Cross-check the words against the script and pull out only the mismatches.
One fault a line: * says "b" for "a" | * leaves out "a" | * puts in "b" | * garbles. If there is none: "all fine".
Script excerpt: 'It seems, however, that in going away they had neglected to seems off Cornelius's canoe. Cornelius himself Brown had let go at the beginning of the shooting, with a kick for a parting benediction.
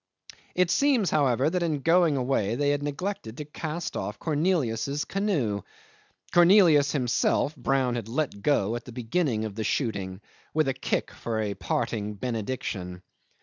* says "cast" for "seems"